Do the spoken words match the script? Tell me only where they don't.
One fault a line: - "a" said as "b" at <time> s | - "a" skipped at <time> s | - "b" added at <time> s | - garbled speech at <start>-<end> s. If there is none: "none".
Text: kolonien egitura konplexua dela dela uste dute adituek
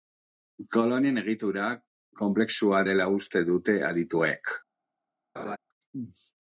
- "dela" skipped at 3.1 s